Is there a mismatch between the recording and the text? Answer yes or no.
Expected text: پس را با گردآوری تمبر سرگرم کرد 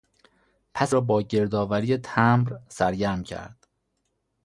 no